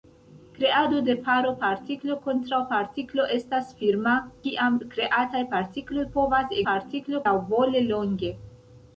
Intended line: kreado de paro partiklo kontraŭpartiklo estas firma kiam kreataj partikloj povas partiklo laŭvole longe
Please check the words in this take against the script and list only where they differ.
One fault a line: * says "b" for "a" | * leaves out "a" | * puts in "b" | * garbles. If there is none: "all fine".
all fine